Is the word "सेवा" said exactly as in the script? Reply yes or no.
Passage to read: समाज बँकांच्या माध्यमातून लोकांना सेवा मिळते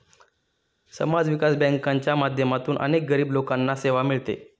yes